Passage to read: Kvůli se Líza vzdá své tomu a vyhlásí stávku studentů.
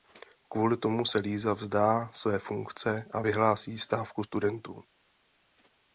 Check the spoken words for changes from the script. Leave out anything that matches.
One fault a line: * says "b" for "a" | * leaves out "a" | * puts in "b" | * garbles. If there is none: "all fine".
* puts in "tomu"
* says "funkce" for "tomu"